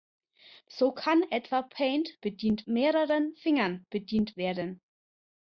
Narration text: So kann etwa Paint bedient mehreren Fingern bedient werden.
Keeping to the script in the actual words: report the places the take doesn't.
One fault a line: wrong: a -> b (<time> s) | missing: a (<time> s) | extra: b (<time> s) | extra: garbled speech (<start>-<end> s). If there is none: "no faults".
no faults